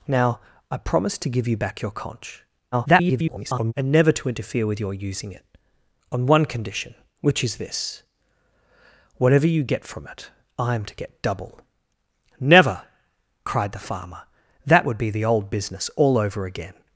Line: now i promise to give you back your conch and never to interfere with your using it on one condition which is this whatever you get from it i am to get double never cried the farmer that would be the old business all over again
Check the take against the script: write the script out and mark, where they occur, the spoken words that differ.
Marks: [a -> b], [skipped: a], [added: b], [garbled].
now i promise to give you back your conch [garbled] and never to interfere with your using it on one condition which is this whatever you get from it i am to get double never cried the farmer that would be the old business all over again